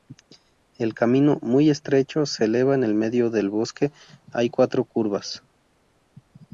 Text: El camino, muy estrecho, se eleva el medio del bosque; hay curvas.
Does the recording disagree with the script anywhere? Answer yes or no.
yes